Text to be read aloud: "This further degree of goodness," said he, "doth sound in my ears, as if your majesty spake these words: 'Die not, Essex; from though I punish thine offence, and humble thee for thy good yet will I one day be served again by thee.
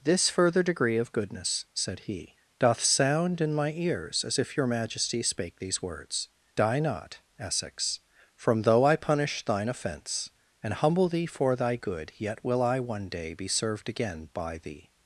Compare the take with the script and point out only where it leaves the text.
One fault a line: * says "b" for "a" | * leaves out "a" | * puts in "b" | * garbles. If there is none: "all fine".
all fine